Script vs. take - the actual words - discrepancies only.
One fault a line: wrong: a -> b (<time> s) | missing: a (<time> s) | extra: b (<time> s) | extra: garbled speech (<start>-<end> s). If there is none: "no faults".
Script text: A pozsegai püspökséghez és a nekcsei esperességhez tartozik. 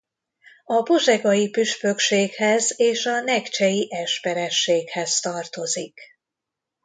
no faults